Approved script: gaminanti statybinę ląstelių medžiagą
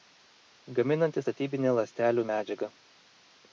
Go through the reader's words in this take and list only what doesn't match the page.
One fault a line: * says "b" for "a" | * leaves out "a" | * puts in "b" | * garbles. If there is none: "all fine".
all fine